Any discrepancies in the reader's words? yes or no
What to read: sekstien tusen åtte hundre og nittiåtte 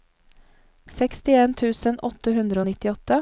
no